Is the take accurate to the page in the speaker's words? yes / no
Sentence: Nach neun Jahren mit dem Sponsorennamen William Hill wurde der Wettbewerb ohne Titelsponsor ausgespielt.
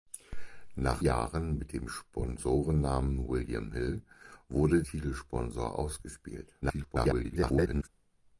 no